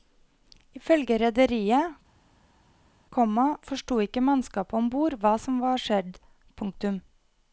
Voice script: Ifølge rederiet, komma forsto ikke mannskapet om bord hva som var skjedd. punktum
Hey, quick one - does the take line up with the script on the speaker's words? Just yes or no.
yes